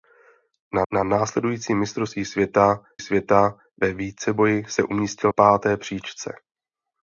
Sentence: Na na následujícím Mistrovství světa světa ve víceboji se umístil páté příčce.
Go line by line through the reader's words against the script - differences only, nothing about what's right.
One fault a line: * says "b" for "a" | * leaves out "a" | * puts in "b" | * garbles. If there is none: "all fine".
all fine